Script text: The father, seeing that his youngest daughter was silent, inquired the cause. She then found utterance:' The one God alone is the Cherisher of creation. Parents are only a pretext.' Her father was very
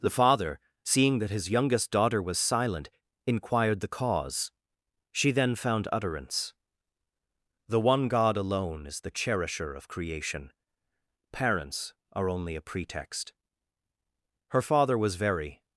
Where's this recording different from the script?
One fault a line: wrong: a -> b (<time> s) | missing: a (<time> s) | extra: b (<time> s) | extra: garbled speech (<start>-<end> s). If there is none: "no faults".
no faults